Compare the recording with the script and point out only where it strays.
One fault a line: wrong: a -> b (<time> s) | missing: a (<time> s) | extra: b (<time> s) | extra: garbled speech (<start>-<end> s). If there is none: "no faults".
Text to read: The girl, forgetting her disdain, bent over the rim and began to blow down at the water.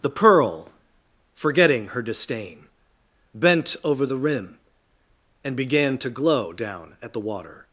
wrong: girl -> pearl (0.1 s)
wrong: blow -> glow (6.1 s)